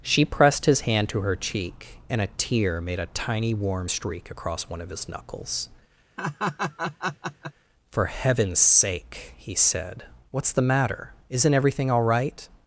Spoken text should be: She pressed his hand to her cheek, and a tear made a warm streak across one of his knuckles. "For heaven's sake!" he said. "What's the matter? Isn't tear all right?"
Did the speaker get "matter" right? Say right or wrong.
right